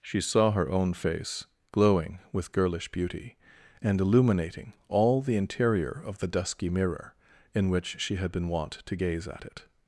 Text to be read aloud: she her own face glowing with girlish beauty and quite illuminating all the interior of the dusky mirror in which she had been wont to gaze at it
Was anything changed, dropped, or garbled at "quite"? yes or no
yes